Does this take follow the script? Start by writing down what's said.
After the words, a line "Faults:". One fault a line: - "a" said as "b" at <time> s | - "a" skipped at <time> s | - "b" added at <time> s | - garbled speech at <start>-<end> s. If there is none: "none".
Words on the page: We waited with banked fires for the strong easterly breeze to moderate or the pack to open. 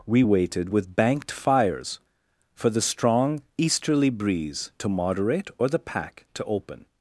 We waited with banked fires for the strong easterly breeze to moderate or the pack to open.
Faults:
none